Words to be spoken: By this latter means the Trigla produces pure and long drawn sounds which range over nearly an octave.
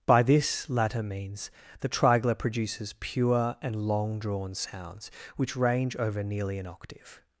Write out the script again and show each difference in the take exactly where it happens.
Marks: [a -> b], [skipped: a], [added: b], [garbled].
By this latter means the Trigla produces pure and long drawn sounds which range over nearly an octave.